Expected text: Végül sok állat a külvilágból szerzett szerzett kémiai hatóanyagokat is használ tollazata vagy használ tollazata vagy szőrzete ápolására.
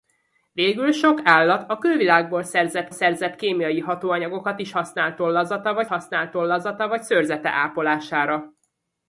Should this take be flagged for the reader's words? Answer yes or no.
no